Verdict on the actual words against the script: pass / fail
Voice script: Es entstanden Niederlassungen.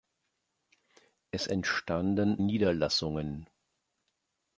pass